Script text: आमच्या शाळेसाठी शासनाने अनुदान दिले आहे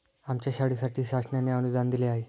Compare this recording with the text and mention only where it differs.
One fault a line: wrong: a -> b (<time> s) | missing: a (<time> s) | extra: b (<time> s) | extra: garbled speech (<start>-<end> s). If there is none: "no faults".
no faults